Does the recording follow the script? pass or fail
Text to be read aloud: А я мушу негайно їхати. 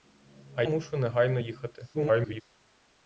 fail